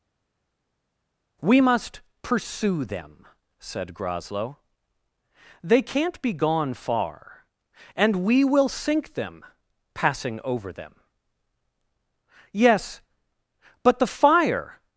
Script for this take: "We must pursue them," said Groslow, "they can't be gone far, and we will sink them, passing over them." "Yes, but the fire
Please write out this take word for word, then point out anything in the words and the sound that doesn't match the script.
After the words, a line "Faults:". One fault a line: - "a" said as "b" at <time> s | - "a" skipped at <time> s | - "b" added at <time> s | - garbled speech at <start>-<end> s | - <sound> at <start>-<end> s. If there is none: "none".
"We must pursue them," said Groslow, "they can't be gone far, and we will sink them, passing over them." "Yes, but the fire
Faults:
none